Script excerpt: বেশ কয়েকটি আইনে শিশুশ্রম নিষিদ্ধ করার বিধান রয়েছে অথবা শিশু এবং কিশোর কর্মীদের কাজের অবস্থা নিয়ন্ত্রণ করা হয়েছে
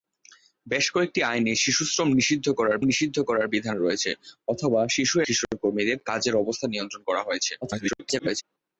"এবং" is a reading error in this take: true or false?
true